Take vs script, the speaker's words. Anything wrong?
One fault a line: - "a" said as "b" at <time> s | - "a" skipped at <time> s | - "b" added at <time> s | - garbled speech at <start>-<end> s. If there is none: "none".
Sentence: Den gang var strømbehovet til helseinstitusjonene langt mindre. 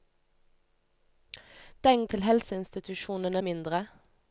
- "gang var strømbehovet" skipped at 2.0 s
- "langt" skipped at 3.4 s